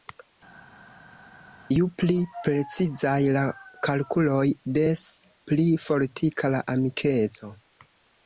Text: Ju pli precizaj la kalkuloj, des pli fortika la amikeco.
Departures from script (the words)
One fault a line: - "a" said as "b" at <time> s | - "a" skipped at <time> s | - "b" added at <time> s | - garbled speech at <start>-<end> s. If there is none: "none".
none